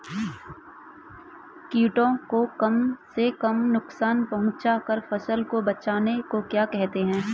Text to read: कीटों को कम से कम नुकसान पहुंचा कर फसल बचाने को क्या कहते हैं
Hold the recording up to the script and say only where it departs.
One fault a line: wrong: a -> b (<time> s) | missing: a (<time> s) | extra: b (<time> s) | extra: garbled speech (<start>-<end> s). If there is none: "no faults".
extra: को (5.4 s)